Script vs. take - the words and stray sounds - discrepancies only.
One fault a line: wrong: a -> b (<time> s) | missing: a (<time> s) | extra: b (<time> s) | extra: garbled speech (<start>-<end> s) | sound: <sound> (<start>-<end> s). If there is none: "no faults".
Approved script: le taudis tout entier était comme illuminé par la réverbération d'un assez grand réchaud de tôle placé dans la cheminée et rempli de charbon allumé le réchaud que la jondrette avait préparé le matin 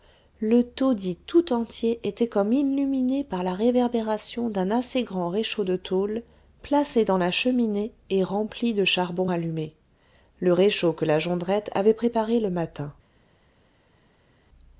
no faults